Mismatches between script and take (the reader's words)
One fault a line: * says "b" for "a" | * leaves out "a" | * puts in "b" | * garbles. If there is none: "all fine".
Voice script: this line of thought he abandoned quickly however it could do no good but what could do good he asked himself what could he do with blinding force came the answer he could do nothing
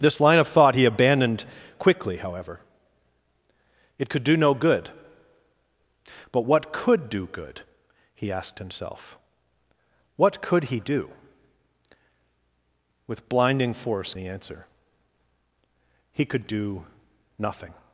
* leaves out "came"